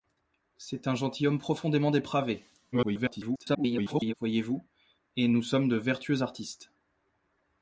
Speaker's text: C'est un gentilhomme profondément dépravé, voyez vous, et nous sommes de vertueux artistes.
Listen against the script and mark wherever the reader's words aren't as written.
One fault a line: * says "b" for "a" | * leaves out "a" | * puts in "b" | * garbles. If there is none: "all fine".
* garbles